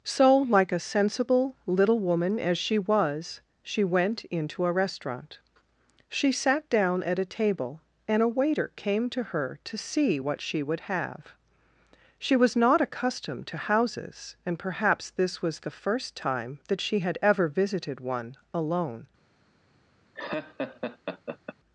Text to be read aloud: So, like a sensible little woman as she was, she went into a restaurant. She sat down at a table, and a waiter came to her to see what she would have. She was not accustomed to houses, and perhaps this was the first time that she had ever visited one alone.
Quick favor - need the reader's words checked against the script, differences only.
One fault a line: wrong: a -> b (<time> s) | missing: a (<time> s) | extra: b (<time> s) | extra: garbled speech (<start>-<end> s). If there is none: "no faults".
no faults